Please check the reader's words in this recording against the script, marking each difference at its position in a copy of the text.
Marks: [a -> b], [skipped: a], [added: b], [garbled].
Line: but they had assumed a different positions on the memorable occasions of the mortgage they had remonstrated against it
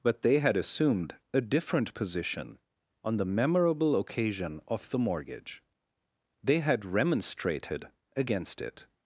but they had assumed a different [positions -> position] on the memorable [occasions -> occasion] of the mortgage they had remonstrated against it